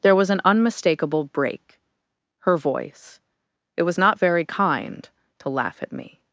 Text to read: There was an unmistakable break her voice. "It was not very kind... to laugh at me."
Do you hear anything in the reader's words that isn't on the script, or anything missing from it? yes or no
no